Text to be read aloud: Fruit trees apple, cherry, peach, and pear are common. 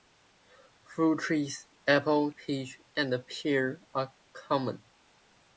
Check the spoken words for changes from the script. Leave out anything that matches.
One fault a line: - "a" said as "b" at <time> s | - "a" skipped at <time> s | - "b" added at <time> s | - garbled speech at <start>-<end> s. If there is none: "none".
- "cherry" skipped at 2.3 s